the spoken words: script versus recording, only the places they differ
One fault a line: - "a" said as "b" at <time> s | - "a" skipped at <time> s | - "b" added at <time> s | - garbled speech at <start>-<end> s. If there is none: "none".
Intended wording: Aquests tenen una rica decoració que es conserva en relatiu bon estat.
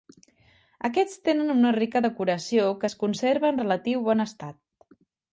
none